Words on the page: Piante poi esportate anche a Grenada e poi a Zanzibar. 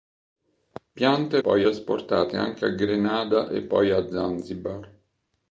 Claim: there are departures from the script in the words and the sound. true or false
false